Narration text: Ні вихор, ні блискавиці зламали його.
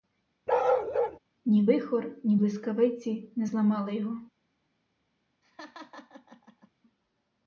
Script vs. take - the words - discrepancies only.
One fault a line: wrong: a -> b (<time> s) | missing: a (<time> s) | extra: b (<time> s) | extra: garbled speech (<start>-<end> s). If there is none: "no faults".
extra: не (3.3 s)